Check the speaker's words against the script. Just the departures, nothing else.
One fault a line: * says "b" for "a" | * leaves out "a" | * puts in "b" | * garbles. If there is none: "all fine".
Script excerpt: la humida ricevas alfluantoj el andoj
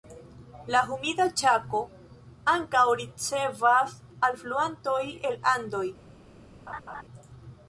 * puts in "ĉako ankaŭ"